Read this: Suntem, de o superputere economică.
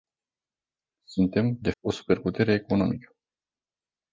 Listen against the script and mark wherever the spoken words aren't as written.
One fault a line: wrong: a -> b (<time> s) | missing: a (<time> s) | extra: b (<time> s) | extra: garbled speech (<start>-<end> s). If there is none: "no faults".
no faults